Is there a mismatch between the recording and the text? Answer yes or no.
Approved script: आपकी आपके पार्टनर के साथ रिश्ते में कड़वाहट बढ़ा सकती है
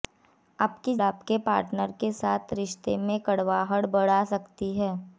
no